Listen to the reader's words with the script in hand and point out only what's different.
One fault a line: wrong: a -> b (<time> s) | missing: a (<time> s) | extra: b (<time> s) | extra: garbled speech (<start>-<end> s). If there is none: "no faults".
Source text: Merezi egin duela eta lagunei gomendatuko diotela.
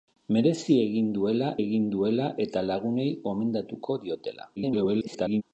extra: egin duela (1.6 s)
extra: garbled speech (4.6-5.4 s)